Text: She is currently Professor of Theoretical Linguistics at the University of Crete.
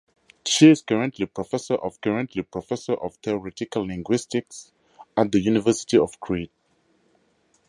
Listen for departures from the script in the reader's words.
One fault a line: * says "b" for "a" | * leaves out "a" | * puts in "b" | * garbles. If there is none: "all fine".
* puts in "currently Professor of"